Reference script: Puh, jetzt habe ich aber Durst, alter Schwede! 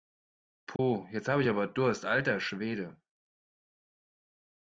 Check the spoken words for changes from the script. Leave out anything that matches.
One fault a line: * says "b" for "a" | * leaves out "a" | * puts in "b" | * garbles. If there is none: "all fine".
all fine